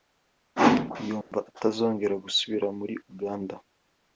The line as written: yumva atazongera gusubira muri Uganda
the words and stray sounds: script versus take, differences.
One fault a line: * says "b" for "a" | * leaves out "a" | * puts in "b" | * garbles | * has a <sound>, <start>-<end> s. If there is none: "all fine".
* has a dropout, 1.2-1.3 s